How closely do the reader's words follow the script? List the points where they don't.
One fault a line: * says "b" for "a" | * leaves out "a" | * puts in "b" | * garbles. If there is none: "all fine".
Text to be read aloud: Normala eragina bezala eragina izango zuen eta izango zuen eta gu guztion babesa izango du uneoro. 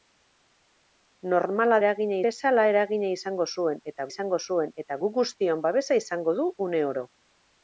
all fine